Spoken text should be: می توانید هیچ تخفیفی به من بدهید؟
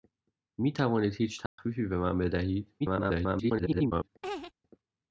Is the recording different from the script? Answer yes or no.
yes